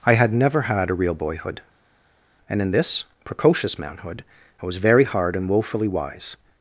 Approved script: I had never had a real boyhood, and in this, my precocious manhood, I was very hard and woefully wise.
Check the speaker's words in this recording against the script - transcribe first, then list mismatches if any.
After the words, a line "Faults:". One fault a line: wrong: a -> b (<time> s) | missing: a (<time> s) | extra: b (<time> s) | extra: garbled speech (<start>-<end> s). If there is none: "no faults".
I had never had a real boyhood, and in this, precocious manhood, I was very hard and woefully wise.
Faults:
missing: my (3.0 s)